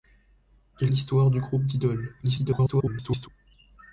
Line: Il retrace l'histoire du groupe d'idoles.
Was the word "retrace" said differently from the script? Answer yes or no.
yes